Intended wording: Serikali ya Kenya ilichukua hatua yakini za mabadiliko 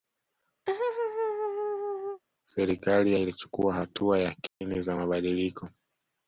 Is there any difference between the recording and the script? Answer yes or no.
yes